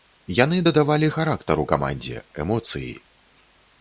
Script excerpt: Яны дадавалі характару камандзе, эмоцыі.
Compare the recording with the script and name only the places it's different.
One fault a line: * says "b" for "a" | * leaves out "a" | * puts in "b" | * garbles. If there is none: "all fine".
all fine